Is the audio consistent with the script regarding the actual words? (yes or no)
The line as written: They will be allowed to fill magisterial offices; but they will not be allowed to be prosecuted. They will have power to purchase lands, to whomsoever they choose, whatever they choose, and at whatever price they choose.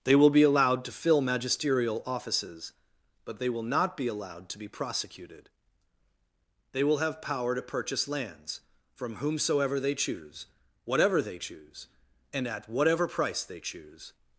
no